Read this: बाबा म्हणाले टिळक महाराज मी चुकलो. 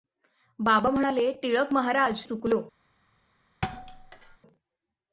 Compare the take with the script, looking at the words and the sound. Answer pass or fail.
fail